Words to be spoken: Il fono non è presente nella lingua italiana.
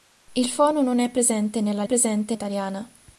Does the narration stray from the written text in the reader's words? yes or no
yes